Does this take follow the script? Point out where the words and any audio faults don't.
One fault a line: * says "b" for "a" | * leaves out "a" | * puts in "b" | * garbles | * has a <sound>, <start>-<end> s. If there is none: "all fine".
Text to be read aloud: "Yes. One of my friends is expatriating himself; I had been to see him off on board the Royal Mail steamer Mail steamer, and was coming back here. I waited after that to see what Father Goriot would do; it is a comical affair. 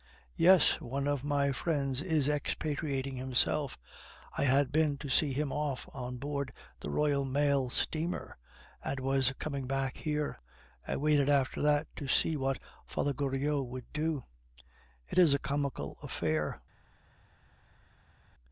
* leaves out "Mail steamer"